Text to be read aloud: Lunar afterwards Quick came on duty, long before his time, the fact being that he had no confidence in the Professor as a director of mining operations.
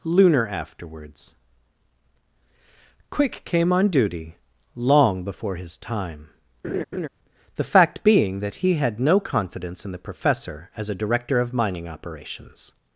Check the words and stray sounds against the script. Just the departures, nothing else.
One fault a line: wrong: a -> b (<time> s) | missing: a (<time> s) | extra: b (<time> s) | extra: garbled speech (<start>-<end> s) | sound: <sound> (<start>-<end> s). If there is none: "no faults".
sound: laugh (6.6-7.1 s)